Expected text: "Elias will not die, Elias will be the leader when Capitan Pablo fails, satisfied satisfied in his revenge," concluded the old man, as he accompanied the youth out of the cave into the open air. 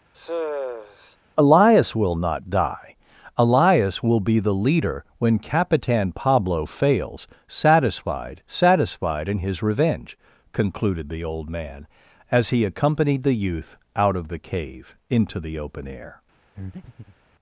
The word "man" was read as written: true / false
true